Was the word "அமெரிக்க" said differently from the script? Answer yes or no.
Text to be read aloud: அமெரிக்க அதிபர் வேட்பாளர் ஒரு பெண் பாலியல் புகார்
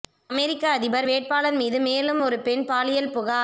no